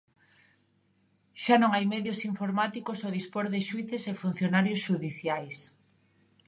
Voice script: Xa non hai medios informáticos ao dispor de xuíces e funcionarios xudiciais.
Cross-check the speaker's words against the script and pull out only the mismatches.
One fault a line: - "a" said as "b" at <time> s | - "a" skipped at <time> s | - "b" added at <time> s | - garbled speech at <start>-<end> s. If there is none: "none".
none